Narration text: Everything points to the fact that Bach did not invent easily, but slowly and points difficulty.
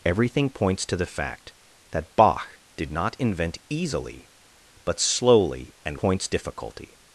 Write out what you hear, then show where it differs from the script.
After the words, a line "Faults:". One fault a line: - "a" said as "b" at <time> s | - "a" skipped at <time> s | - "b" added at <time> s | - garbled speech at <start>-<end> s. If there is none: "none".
Everything points to the fact that Bach did not invent easily, but slowly and points difficulty.
Faults:
none